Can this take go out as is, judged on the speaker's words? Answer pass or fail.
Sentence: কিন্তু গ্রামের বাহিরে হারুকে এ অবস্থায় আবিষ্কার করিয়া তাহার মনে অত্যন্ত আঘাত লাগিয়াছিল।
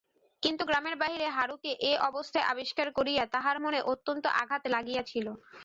pass